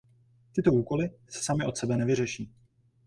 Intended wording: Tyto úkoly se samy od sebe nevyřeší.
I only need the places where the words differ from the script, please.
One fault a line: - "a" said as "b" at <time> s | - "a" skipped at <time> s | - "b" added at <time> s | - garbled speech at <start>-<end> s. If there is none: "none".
none